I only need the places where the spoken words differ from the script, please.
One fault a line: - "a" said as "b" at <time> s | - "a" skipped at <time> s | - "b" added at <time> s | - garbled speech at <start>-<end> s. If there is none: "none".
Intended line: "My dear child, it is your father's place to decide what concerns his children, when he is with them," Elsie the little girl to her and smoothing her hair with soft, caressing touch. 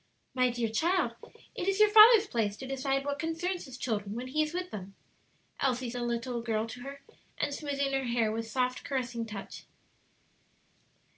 none